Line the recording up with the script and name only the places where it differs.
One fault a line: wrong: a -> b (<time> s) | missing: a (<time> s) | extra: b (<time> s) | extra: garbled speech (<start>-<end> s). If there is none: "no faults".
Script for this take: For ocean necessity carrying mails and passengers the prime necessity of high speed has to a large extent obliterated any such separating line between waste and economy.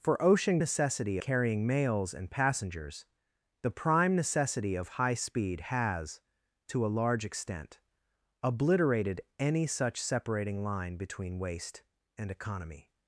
no faults